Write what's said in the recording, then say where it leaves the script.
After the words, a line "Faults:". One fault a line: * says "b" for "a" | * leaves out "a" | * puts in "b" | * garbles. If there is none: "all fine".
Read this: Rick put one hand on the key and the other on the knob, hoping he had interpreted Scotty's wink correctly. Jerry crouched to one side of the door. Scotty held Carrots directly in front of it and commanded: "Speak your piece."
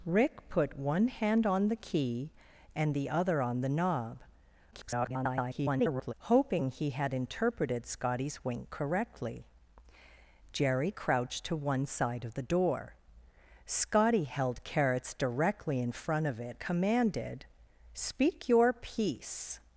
Rick put one hand on the key and the other on the knob, [garbled] hoping he had interpreted Scotty's wink correctly. Jerry crouched to one side of the door. Scotty held Carrots directly in front of it commanded: "Speak your piece."
Faults:
* garbles
* leaves out "and"